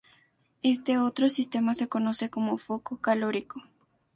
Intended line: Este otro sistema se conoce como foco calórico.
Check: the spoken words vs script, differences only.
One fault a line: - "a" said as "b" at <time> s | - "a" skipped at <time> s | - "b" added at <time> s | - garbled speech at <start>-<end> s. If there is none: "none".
none